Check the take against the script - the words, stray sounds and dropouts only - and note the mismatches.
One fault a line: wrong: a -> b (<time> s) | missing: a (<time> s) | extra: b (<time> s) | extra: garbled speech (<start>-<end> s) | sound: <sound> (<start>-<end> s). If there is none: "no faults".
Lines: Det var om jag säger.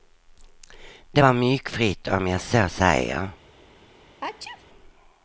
extra: myggfritt (1.3 s)
extra: så (2.4 s)
sound: sneeze (4.2-4.6 s)